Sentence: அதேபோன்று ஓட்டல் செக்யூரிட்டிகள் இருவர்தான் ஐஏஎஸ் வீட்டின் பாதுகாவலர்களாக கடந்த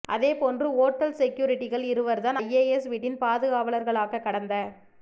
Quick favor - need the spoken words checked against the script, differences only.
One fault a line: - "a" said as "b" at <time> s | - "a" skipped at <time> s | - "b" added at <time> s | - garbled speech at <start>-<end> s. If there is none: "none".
none